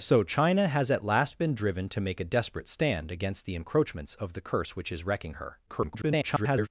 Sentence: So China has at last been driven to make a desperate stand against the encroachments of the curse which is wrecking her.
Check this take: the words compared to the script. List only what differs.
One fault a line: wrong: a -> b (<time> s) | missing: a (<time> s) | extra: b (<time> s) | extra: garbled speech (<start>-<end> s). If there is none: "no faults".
extra: garbled speech (5.7-6.7 s)